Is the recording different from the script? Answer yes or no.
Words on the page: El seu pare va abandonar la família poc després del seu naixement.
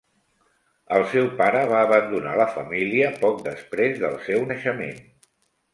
no